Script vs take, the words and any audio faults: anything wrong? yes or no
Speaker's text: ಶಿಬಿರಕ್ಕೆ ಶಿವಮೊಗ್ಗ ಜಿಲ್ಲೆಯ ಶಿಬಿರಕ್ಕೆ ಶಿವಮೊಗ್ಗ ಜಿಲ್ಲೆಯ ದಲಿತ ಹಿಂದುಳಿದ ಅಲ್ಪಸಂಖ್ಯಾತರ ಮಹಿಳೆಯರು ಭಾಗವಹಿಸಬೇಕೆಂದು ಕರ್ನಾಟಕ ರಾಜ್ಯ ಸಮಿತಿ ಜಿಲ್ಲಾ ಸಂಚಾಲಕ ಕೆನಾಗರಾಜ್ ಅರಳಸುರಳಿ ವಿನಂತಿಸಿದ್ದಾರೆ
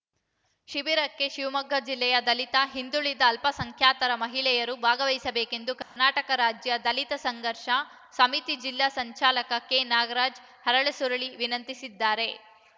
yes